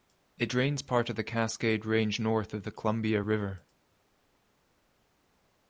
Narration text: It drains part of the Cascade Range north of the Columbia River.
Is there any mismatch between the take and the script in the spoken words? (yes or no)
no